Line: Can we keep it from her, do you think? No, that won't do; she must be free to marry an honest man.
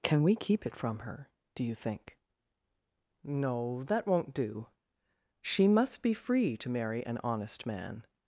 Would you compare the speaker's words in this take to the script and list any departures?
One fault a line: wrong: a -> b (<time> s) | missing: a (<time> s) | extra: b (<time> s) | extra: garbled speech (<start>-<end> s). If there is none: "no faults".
no faults